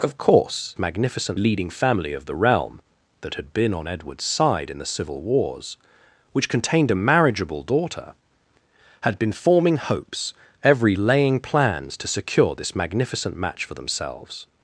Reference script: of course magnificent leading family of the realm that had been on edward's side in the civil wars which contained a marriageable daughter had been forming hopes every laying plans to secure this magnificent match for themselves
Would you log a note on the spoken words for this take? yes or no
no